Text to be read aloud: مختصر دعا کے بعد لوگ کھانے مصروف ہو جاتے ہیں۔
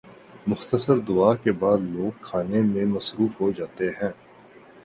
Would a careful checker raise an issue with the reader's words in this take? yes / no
yes